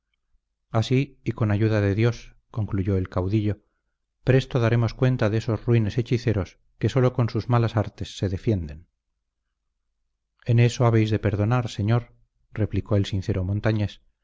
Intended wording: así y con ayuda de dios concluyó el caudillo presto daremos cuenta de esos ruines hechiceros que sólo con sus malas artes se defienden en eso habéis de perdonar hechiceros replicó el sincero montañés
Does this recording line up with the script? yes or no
no